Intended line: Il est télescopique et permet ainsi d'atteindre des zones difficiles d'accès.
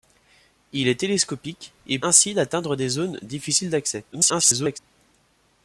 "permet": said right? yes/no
no